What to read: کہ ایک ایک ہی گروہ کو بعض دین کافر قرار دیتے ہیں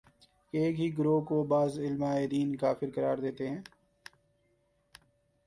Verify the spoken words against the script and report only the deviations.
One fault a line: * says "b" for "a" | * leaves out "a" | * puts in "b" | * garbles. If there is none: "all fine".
* leaves out "ایک"
* puts in "علماے"